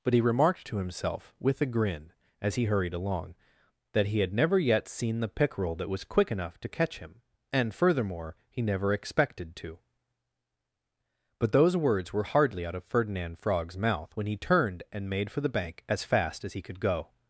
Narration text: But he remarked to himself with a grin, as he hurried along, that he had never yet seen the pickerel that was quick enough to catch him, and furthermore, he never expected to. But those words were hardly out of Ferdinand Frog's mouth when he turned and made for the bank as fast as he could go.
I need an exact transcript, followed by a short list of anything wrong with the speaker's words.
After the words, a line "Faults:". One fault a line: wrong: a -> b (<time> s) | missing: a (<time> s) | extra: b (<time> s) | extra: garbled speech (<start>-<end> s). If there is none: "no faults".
But he remarked to himself with a grin, as he hurried along, that he had never yet seen the pickerel that was quick enough to catch him, and furthermore, he never expected to. But those words were hardly out of Ferdinand Frog's mouth when he turned and made for the bank as fast as he could go.
Faults:
no faults